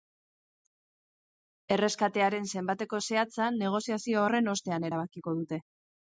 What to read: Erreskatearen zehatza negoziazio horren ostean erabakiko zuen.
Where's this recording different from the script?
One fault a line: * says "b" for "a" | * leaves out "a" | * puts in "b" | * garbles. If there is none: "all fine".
* puts in "zenbateko"
* says "dute" for "zuen"